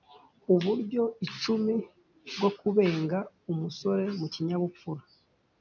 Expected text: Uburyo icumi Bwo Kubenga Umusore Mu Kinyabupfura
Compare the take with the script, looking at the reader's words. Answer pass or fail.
pass